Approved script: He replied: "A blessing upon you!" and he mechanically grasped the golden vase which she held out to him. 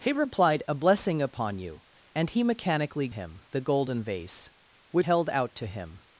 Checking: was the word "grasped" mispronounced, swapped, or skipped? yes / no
yes